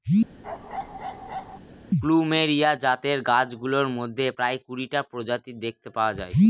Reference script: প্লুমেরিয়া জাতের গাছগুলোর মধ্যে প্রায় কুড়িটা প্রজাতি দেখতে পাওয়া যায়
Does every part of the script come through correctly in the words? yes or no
yes